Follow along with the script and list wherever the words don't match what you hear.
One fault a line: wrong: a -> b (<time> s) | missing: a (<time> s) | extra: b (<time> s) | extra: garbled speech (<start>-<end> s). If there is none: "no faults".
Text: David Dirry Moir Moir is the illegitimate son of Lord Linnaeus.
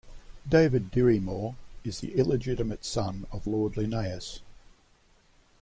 missing: Moir (1.6 s)